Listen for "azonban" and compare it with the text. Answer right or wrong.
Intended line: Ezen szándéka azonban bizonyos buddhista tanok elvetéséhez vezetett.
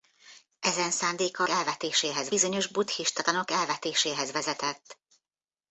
wrong